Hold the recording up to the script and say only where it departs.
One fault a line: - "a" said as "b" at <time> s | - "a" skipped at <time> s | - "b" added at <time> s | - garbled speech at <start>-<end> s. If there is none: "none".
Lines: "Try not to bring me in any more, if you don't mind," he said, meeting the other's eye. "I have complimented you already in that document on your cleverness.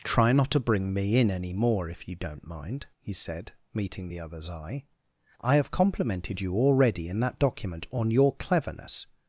none